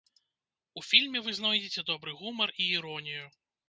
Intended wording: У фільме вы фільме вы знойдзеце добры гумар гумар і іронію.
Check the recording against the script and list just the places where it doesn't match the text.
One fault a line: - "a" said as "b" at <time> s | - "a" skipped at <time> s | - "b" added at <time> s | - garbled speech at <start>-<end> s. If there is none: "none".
- "фільме вы" skipped at 1.4 s
- "гумар" skipped at 2.5 s